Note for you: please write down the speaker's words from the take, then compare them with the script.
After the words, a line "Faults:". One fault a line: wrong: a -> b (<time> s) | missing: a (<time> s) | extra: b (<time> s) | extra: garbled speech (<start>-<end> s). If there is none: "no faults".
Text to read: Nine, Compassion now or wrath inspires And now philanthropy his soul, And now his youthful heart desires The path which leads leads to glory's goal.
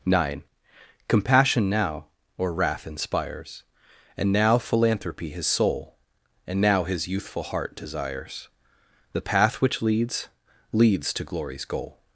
Nine, Compassion now or wrath inspires And now philanthropy his soul, And now his youthful heart desires The path which leads leads to glory's goal.
Faults:
no faults